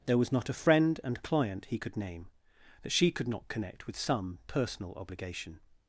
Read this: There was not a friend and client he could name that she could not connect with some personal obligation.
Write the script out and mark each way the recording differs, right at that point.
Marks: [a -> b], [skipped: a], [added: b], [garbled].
There was not a friend and client he could name that she could not connect with some personal obligation.